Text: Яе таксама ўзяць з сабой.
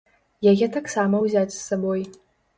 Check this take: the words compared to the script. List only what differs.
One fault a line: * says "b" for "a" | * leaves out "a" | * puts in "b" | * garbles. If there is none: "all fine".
all fine